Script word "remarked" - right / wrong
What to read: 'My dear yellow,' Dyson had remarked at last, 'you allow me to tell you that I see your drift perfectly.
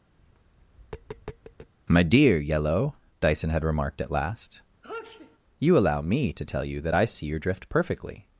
right